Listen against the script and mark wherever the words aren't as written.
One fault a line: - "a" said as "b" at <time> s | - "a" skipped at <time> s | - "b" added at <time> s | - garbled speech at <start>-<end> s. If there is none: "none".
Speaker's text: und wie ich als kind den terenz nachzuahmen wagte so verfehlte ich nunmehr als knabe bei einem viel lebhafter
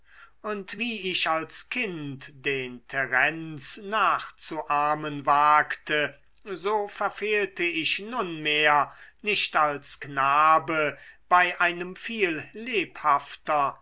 - "nicht" added at 9.2 s